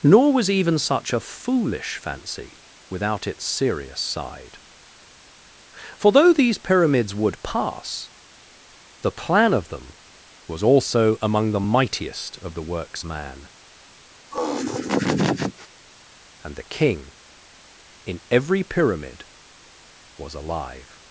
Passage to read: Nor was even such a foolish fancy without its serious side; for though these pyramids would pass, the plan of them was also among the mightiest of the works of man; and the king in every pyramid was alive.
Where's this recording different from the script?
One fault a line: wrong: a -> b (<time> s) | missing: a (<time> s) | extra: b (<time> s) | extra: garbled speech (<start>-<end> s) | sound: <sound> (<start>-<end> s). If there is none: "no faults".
missing: of (13.0 s)
sound: laugh (14.3-15.7 s)